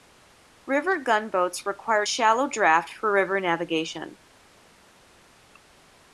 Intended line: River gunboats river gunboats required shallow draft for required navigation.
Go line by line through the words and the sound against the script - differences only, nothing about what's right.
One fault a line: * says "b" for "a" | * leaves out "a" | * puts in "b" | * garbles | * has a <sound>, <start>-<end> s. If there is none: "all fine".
* leaves out "river gunboats"
* says "river" for "required"